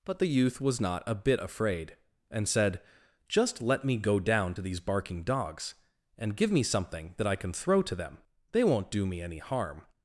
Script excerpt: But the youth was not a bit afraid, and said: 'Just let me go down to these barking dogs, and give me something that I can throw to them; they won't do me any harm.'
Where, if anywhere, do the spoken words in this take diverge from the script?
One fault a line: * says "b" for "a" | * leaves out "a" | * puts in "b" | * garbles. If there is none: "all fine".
all fine